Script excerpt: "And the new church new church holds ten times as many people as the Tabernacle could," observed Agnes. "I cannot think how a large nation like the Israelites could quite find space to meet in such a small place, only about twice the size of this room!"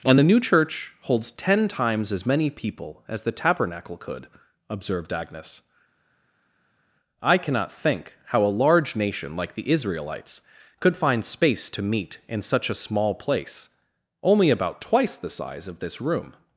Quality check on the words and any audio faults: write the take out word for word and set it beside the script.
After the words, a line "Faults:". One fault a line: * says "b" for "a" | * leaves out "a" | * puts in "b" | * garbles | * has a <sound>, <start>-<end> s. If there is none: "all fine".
"And the new church holds ten times as many people as the Tabernacle could," observed Agnes. "I cannot think how a large nation like the Israelites could find space to meet in such a small place, only about twice the size of this room!"
Faults:
* leaves out "new church"
* leaves out "quite"